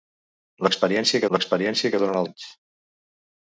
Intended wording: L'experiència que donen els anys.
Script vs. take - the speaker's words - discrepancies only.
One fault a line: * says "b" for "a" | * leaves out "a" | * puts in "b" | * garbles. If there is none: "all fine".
* puts in "l'experiència"
* leaves out "els"